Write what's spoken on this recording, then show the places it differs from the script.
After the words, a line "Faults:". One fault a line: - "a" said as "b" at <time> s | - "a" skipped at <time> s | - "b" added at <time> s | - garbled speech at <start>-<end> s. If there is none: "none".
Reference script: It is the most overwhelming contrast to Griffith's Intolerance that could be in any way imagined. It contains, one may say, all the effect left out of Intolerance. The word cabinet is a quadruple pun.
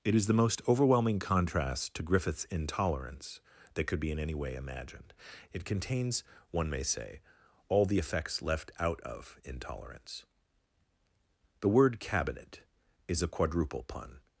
It is the most overwhelming contrast to Griffith's Intolerance that could be in any way imagined. It contains, one may say, all the effects left out of Intolerance. The word cabinet is a quadruple pun.
Faults:
- "effect" said as "effects" at 8.0 s